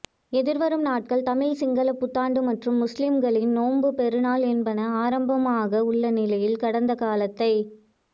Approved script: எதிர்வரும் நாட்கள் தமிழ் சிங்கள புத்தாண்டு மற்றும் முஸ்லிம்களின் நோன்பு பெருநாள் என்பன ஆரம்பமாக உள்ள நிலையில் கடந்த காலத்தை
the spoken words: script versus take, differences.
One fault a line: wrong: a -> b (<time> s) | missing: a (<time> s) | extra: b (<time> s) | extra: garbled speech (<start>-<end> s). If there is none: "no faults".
no faults